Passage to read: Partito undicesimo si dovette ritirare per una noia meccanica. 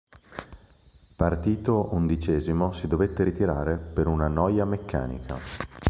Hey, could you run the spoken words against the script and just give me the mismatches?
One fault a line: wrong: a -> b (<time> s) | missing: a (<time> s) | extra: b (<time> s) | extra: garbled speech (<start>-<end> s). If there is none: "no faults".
no faults